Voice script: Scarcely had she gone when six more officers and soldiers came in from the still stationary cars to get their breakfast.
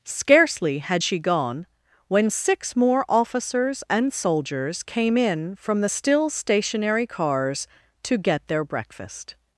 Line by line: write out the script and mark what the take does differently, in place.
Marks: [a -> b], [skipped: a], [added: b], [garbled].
Scarcely had she gone when six more officers and soldiers came in from the still stationary cars to get their breakfast.